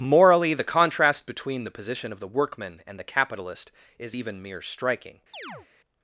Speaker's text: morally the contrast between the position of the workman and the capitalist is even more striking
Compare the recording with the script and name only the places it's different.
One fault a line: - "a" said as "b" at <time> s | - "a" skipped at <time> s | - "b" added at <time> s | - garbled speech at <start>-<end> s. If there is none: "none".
- "more" said as "mere" at 4.4 s